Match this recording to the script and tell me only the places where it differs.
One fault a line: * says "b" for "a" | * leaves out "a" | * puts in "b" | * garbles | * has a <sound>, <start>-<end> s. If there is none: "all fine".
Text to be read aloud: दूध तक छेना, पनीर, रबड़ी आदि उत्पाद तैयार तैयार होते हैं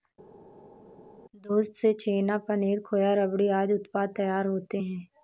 * says "से" for "तक"
* puts in "खोआ"
* leaves out "तैयार"